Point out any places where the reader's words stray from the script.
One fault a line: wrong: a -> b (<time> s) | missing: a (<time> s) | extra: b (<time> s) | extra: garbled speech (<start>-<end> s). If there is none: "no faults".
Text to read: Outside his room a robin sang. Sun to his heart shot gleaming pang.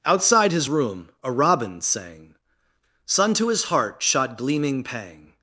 no faults